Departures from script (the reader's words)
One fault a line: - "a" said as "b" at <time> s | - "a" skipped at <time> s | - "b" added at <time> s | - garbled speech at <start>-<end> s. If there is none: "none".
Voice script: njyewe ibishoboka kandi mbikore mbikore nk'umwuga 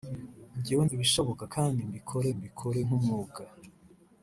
none